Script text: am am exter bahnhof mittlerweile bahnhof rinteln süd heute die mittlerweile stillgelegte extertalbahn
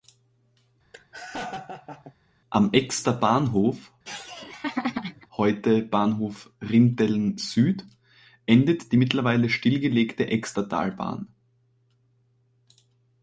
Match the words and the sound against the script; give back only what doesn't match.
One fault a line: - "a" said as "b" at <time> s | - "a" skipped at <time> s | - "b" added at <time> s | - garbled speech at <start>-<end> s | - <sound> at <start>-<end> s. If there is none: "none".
- laugh at 0.9-2.1 s
- "am" skipped at 2.7 s
- laugh at 4.0-5.3 s
- "mittlerweile" said as "heute" at 5.4 s
- "heute" said as "endet" at 8.5 s